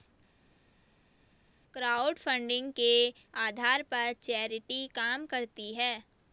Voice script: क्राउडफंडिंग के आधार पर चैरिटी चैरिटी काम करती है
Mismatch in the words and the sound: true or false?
true